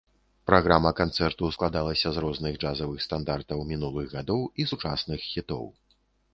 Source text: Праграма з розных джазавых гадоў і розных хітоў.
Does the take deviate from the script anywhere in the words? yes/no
yes